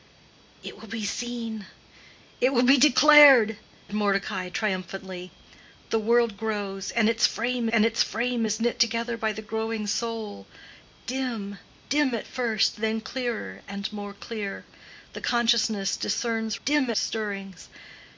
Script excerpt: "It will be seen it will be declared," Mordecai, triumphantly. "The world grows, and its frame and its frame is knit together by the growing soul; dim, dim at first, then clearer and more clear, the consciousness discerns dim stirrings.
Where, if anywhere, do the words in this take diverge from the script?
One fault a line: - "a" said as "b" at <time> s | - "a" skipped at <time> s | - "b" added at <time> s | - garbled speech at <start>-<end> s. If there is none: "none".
none